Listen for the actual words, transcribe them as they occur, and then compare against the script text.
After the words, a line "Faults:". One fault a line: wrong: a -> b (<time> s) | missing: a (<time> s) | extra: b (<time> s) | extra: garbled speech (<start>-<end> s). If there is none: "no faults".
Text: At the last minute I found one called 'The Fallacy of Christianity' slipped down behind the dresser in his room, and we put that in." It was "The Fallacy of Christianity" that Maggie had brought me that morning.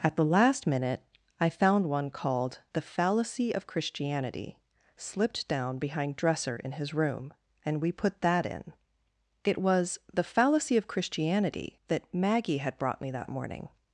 At the last minute I found one called 'The Fallacy of Christianity' slipped down behind dresser in his room, and we put that in." It was "The Fallacy of Christianity" that Maggie had brought me that morning.
Faults:
missing: the (6.2 s)